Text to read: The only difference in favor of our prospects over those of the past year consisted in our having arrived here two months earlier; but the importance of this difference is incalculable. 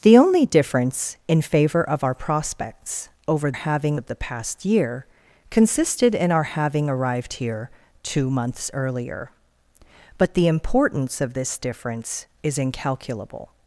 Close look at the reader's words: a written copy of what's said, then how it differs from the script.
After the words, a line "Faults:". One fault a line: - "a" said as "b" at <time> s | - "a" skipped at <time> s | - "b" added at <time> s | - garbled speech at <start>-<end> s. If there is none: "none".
The only difference in favor of our prospects over having of the past year consisted in our having arrived here two months earlier; but the importance of this difference is incalculable.
Faults:
- "those" said as "having" at 3.5 s